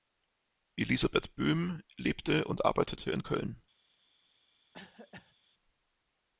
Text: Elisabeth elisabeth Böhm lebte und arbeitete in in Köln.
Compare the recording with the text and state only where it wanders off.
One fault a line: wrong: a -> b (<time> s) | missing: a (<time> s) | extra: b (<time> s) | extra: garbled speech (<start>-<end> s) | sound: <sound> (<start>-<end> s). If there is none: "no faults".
missing: elisabeth (1.4 s)
missing: in (3.2 s)
sound: cough (4.7-5.4 s)